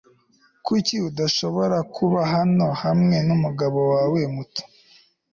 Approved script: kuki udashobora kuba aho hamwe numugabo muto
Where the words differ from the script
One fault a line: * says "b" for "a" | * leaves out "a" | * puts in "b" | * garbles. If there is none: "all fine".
* says "hano" for "aho"
* puts in "wawe"